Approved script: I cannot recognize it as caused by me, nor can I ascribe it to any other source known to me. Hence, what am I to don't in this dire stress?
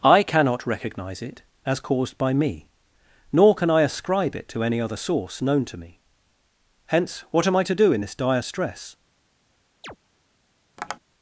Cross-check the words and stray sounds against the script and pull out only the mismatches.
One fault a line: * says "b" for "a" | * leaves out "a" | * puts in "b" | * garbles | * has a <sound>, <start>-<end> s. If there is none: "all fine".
* says "do" for "don't"
* has a chirp, 9.8-10.0 s
* has a tap, 10.8-11.0 s